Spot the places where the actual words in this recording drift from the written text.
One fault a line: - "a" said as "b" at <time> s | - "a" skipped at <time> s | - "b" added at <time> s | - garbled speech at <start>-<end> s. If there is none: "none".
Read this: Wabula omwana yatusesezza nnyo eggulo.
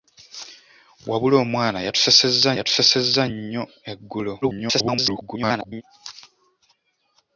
- "yatusesezza" added at 2.6 s
- garbled speech at 4.4-5.8 s